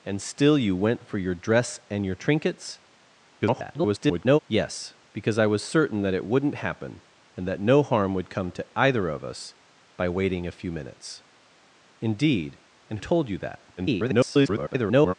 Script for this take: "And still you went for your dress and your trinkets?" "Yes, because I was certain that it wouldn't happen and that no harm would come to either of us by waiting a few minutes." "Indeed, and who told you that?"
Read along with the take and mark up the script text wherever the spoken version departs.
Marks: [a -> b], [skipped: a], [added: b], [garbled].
"And still you went for your dress and your trinkets?" [garbled] "Yes, because I was certain that it wouldn't happen and that no harm would come to either of us by waiting a few minutes." "Indeed, and [skipped: who] told you that?" [garbled]